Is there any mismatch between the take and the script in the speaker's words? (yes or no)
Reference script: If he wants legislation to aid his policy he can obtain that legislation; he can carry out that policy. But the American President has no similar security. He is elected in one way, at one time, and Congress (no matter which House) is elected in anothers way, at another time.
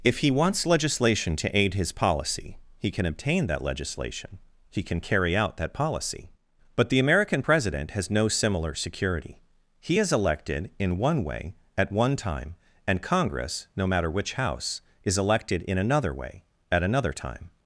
yes